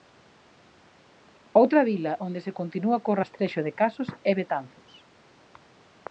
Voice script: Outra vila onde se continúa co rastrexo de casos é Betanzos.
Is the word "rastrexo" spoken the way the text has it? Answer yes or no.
yes